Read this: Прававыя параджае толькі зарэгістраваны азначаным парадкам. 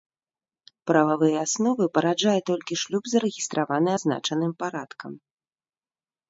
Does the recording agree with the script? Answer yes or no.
no